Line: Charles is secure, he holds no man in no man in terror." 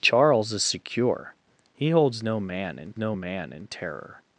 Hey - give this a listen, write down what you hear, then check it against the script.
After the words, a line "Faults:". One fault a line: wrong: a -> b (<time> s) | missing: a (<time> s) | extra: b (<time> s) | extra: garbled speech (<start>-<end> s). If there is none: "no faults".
Charles is secure, he holds no man in no man in terror."
Faults:
no faults